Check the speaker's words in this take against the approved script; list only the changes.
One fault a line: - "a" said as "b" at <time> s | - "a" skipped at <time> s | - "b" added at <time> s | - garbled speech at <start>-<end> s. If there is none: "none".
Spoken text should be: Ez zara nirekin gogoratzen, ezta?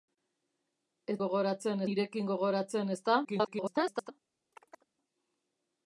- "zara" said as "gogoratzen" at 1.2 s
- garbled speech at 3.2-4.1 s